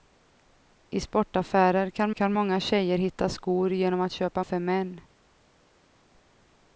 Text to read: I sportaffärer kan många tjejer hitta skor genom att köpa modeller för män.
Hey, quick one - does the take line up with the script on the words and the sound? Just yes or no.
no